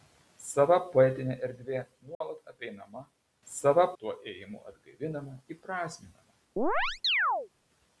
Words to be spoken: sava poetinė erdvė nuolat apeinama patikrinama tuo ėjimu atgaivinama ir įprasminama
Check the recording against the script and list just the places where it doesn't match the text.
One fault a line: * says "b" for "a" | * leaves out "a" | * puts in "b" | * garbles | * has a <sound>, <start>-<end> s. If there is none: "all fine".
* has a dropout, 2.1-2.2 s
* says "sava" for "patikrinama"
* leaves out "ir"
* has a chirp, 6.6-7.5 s